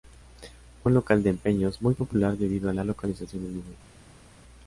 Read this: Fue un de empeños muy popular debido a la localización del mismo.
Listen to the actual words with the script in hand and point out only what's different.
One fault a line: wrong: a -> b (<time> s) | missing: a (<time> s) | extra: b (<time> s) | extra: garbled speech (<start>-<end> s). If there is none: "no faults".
extra: local (0.9 s)